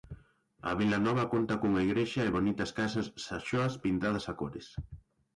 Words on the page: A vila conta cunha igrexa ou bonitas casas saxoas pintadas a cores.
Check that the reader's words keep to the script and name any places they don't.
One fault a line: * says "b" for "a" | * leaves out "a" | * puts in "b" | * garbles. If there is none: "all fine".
* puts in "nova"
* says "e" for "ou"